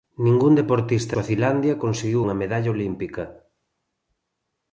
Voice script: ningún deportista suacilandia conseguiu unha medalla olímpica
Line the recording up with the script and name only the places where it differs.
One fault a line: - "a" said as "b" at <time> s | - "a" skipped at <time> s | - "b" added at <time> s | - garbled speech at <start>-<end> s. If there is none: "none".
none